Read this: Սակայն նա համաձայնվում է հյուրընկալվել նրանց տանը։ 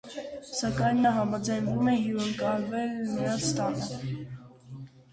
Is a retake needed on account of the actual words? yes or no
no